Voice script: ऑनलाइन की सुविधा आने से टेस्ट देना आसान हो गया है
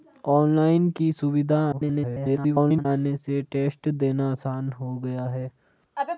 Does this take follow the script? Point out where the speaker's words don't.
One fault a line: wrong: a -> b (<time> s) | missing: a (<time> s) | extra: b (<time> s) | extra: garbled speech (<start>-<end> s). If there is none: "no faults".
extra: garbled speech (1.7-2.9 s)